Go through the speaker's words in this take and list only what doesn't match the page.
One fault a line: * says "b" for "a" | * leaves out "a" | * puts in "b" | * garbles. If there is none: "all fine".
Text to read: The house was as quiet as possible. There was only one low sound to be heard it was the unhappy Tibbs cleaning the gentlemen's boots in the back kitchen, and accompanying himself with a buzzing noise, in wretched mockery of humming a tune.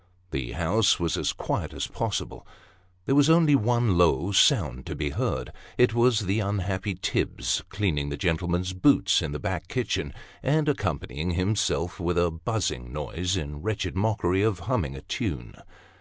all fine